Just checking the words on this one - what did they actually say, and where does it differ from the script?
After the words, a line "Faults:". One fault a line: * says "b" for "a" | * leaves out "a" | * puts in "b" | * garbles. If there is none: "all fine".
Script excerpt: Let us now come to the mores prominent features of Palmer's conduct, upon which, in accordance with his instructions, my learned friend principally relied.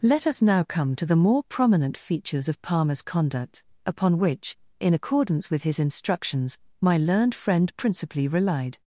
Let us now come to the more prominent features of Palmer's conduct, upon which, in accordance with his instructions, my learned friend principally relied.
Faults:
* says "more" for "mores"